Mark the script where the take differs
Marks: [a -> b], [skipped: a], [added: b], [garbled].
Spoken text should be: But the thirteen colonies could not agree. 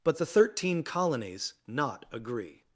But the thirteen colonies [skipped: could] not agree.